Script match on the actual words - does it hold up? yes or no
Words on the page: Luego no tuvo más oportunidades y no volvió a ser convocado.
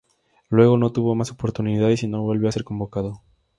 yes